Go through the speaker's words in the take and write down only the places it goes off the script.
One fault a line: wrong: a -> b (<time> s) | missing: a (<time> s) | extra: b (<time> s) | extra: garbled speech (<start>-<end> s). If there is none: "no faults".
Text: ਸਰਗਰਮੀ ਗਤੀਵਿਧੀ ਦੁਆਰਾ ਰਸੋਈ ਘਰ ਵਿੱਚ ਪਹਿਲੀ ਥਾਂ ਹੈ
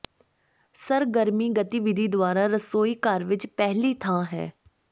no faults